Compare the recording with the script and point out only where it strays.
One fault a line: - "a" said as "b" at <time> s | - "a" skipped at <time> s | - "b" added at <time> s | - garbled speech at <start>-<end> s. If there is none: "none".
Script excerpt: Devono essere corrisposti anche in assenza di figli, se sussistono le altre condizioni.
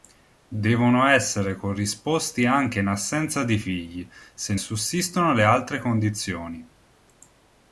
none